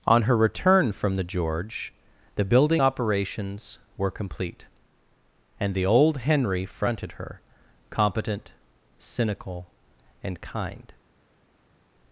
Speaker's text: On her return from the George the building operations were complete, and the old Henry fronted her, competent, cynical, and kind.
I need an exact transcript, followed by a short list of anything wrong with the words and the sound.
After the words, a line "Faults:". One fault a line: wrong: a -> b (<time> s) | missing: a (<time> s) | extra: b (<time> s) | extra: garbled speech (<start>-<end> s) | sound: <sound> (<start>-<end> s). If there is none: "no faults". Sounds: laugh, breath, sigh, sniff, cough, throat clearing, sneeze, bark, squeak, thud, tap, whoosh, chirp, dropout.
On her return from the George the building operations were complete, and the old Henry fronted her, competent, cynical, and kind.
Faults:
no faults